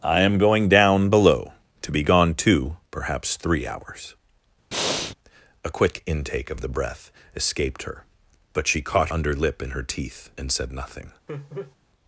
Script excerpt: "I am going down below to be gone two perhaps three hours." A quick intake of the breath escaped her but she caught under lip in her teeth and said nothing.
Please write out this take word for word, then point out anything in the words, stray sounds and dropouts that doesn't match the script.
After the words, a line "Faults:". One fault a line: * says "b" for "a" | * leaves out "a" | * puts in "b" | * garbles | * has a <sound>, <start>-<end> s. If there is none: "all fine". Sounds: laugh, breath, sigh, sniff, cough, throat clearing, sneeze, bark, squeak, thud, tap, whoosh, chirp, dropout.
"I am going down below to be gone two perhaps three hours." A quick intake of the breath escaped her but she caught under lip in her teeth and said nothing.
Faults:
* has a breath, 4.7-5.2 s
* has a laugh, 11.3-11.8 s